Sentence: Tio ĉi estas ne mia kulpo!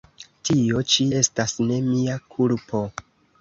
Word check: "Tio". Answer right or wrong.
right